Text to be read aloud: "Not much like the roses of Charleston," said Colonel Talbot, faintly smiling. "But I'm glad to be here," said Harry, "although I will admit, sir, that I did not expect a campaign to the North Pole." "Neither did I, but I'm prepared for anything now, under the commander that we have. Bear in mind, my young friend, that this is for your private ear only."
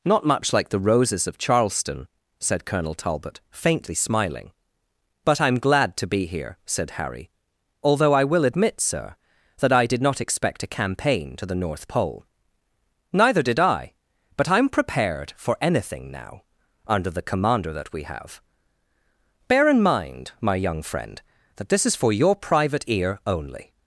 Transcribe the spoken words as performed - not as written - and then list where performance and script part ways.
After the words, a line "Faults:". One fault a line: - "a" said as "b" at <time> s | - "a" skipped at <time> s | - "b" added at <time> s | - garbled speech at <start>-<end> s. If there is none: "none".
"Not much like the roses of Charleston," said Colonel Talbot, faintly smiling. "But I'm glad to be here," said Harry, "although I will admit, sir, that I did not expect a campaign to the North Pole." "Neither did I, but I'm prepared for anything now, under the commander that we have. Bear in mind, my young friend, that this is for your private ear only."
Faults:
none